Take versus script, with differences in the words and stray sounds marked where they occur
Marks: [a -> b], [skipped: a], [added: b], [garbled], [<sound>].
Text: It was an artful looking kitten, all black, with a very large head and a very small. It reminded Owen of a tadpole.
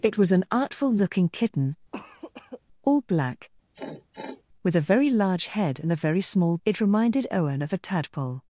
It was an artful looking kitten, [cough] all black, [sniff] with a very large head and a very small. It reminded Owen of a tadpole.